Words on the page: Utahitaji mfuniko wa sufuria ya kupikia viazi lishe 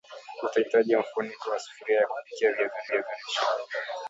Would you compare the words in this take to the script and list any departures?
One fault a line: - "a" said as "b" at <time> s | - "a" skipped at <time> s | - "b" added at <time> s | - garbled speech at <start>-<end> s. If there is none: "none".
- "viazi" added at 2.9 s